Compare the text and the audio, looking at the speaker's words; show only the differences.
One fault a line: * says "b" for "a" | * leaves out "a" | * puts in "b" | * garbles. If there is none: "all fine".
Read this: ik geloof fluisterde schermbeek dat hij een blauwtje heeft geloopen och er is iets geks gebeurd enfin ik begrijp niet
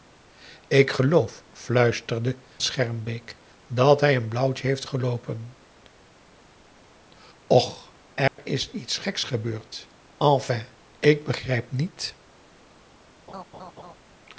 all fine